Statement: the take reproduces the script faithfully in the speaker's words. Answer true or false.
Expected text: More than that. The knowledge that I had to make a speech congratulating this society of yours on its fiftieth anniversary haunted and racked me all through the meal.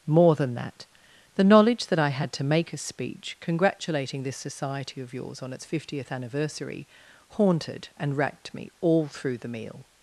true